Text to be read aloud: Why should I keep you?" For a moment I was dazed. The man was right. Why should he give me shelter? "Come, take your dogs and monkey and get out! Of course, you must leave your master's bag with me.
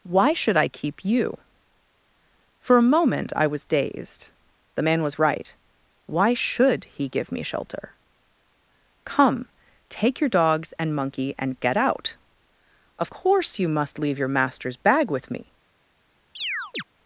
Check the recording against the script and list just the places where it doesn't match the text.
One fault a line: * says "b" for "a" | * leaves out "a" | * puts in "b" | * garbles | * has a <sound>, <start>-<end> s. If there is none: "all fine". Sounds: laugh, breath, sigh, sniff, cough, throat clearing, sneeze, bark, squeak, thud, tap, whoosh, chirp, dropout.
* has a chirp, 16.3-16.8 s